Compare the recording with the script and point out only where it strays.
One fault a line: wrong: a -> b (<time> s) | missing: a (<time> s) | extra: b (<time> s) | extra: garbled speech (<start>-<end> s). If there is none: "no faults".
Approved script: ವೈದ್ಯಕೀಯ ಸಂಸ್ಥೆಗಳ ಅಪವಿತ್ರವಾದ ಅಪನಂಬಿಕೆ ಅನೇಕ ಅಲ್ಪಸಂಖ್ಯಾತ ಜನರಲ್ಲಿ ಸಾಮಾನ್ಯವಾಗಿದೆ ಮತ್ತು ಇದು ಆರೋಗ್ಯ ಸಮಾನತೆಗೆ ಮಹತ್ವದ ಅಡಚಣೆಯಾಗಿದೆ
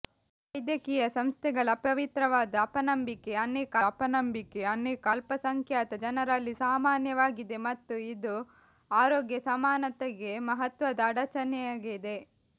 extra: ಅಪನಂಬಿಕೆ ಅನೇಕ (3.9 s)